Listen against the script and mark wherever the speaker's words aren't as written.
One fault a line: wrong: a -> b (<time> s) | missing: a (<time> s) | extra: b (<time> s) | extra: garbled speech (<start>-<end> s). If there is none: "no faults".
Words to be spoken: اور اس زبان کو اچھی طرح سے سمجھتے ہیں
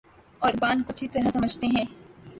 missing: اس (0.5 s)
missing: سے (1.3 s)